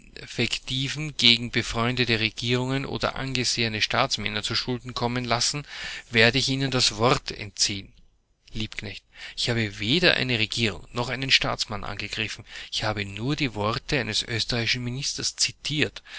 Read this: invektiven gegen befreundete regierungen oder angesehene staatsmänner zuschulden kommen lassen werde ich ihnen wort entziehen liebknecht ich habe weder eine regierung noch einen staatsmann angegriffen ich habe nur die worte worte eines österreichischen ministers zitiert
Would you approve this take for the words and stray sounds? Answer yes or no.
no